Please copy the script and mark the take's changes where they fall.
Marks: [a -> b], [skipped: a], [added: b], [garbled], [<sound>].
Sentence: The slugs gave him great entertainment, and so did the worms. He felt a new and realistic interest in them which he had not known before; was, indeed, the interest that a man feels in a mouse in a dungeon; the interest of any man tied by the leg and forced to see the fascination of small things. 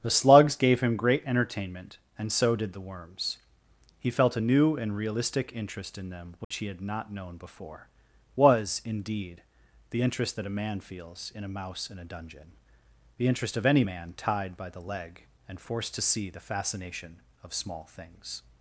The slugs gave him great entertainment, and so did the worms. He felt a new and realistic interest in them which [dropout] he had not known before; was, indeed, the interest that a man feels in a mouse in a dungeon; the interest of any man tied by the leg and forced to see the fascination of small things.